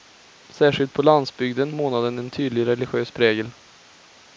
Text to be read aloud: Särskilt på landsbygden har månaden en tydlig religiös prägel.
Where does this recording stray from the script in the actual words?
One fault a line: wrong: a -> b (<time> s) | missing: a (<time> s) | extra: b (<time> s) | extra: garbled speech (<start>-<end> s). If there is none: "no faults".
missing: har (1.8 s)